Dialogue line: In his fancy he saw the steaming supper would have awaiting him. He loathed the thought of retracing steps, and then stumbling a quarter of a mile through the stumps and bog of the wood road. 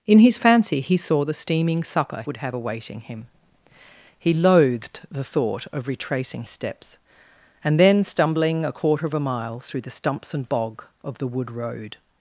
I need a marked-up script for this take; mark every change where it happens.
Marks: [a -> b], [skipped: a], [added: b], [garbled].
In his fancy he saw the steaming supper would have awaiting him. He loathed the thought of retracing steps, and then stumbling a quarter of a mile through the stumps and bog of the wood road.